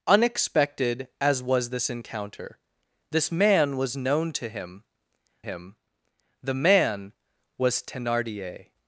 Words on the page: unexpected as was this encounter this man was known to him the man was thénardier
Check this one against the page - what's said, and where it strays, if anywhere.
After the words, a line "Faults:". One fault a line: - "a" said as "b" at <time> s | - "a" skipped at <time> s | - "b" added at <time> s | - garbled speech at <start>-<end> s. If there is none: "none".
unexpected as was this encounter this man was known to him him the man was thénardier
Faults:
- "him" added at 5.4 s